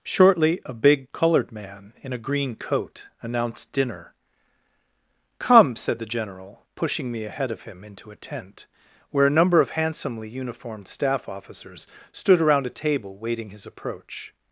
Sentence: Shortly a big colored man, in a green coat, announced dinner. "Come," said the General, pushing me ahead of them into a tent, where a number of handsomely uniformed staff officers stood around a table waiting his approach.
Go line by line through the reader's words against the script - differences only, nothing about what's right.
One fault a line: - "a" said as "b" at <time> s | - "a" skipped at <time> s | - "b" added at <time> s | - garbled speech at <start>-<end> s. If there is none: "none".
- "them" said as "him" at 7.6 s